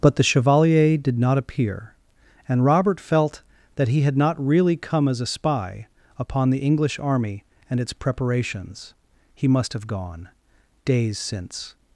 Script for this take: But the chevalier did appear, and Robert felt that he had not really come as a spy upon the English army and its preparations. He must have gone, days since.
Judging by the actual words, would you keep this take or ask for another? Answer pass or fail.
fail